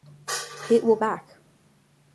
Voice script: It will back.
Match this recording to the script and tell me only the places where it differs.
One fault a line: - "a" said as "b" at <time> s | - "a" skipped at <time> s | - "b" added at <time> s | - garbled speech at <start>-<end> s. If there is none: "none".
none